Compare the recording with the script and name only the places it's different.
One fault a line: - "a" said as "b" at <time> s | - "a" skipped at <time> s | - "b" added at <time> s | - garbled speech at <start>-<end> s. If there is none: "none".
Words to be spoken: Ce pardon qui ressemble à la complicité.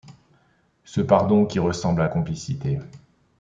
- "la" skipped at 2.1 s